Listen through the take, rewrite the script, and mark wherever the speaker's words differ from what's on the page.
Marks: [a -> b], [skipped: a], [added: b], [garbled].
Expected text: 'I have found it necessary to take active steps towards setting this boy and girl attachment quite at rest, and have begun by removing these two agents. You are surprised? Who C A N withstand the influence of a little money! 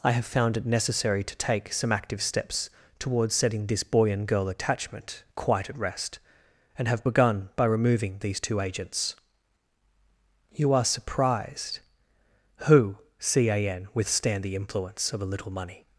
'I have found it necessary to take [added: some] active steps towards setting this boy and girl attachment quite at rest, and have begun by removing these two agents. You are surprised? Who C A N withstand the influence of a little money!